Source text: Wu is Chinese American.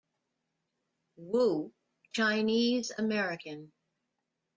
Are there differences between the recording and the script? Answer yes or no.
yes